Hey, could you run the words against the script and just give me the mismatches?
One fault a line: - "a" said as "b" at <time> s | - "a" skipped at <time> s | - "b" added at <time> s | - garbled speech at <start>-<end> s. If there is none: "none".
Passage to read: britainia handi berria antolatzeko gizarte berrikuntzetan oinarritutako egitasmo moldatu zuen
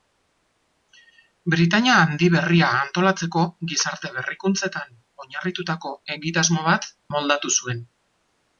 - "bat" added at 6.7 s